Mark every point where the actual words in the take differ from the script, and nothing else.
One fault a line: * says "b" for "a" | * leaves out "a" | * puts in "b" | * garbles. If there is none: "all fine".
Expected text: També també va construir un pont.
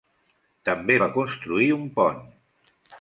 * leaves out "també"